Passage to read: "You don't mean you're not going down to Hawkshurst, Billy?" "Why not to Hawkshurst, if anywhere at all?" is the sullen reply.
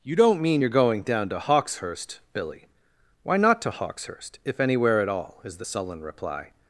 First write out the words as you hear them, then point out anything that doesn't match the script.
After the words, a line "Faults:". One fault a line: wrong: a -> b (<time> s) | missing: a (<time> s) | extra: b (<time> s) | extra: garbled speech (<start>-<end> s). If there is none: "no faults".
"You don't mean you're going down to Hawkshurst, Billy?" "Why not to Hawkshurst, if anywhere at all?" is the sullen reply.
Faults:
missing: not (0.7 s)